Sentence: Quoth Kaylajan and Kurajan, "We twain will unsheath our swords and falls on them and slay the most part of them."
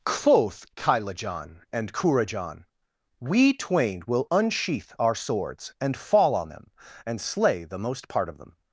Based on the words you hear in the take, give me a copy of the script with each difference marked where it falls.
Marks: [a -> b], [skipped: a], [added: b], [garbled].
Quoth Kaylajan and Kurajan, "We twain will unsheath our swords and [falls -> fall] on them and slay the most part of them."